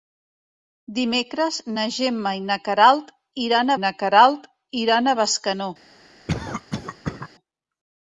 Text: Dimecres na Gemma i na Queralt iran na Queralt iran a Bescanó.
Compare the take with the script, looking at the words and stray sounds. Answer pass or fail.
fail